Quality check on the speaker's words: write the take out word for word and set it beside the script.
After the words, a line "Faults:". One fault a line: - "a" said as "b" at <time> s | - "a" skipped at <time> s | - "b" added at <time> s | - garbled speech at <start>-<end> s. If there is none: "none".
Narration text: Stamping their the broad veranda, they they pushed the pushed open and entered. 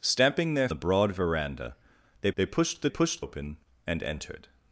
Stamping their the broad veranda, they they pushed the pushed open and entered.
Faults:
none